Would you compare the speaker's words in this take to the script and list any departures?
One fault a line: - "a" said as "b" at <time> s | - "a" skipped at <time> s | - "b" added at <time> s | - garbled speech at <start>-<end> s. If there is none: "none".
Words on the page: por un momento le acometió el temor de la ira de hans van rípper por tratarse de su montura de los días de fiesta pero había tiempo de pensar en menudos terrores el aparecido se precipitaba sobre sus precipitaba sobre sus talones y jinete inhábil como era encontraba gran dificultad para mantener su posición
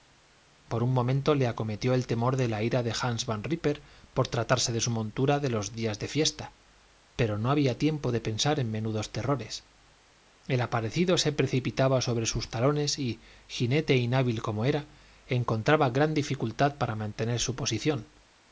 - "no" added at 7.4 s
- "precipitaba sobre sus" skipped at 12.5 s